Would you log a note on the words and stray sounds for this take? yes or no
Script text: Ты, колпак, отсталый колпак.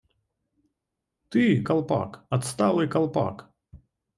no